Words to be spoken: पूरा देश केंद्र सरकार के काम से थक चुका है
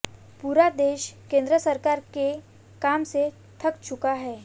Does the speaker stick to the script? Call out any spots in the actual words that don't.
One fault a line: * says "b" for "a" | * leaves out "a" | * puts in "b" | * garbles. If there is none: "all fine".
all fine